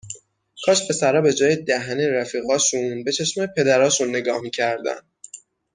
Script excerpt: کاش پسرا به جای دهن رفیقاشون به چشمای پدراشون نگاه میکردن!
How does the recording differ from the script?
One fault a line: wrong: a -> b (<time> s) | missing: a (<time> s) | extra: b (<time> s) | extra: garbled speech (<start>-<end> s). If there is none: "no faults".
no faults